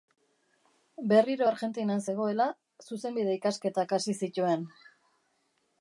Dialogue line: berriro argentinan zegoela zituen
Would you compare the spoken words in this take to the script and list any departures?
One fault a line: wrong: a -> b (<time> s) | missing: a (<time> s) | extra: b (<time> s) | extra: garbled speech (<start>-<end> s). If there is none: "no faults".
extra: zuzenbide ikasketak hasi (2.9 s)